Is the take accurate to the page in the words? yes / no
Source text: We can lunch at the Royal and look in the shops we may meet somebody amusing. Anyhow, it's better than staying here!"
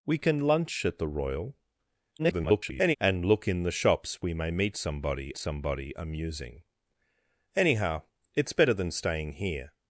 no